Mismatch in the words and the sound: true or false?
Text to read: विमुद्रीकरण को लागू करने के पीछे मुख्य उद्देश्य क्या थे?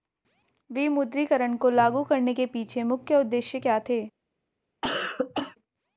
true